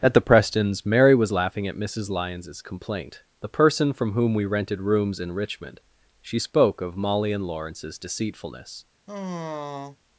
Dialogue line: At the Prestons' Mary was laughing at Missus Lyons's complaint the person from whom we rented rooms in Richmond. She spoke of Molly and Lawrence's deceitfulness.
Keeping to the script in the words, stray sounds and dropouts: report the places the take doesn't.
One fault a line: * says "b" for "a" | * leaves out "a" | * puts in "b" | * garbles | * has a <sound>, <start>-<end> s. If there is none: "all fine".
* has a sigh, 9.1-10.0 s